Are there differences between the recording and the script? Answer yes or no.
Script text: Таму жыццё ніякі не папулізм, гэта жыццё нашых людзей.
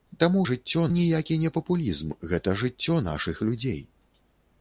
no